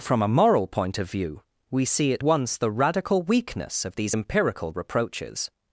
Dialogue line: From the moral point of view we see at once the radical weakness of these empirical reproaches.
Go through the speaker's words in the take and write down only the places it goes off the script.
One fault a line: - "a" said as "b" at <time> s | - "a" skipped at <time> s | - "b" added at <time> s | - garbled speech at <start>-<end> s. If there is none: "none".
- "the" said as "a" at 0.2 s